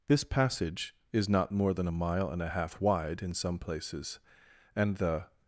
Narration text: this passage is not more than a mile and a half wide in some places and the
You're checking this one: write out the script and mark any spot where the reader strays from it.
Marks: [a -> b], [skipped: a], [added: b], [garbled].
this passage is not more than a mile and a half wide in some places and the